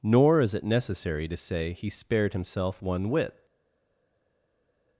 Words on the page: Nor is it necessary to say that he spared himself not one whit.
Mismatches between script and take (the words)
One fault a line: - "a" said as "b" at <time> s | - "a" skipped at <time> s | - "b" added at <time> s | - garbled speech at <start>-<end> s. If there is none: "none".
- "that" skipped at 1.7 s
- "not" skipped at 2.8 s